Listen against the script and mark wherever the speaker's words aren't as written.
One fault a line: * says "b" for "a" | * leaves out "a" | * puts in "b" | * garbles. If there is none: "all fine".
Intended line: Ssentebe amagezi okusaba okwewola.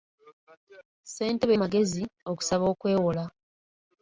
all fine